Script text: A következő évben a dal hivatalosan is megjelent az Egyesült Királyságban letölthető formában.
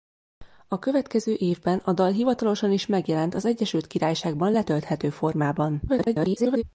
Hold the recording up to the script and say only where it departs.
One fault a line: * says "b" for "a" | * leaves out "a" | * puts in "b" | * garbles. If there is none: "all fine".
* garbles